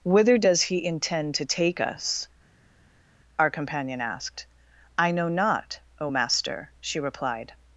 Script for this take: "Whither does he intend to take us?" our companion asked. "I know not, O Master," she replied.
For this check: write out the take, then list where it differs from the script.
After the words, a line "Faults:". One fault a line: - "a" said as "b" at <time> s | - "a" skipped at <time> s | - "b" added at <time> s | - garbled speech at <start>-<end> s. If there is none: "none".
"Whither does he intend to take us?" our companion asked. "I know not, O Master," she replied.
Faults:
none